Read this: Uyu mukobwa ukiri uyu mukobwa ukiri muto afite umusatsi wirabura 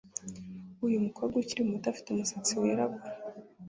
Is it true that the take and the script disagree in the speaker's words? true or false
true